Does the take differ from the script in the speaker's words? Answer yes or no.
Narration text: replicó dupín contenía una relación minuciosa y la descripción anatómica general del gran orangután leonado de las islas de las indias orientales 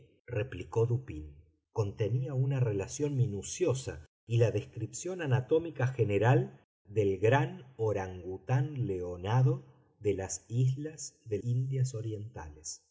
yes